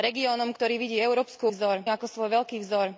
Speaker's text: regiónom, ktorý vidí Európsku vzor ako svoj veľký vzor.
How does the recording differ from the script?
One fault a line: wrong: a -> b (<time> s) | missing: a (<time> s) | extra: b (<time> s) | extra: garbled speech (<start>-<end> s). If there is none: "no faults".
no faults